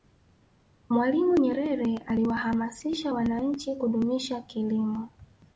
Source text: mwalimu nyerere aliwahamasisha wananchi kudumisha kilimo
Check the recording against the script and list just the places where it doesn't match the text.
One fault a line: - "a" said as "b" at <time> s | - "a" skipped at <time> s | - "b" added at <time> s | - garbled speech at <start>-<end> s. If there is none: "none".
none